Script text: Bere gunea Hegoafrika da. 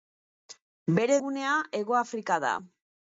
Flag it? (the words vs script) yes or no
no